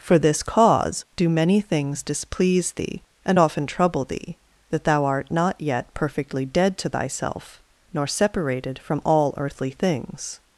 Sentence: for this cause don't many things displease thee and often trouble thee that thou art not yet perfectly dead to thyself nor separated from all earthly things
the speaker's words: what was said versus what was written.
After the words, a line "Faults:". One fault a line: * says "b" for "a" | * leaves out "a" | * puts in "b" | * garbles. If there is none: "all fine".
for this cause do many things displease thee and often trouble thee that thou art not yet perfectly dead to thyself nor separated from all earthly things
Faults:
* says "do" for "don't"